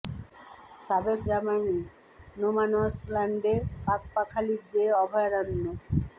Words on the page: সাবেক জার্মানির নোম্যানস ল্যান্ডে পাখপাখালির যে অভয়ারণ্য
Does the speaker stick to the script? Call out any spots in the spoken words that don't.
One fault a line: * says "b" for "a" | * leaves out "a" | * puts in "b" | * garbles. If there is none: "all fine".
all fine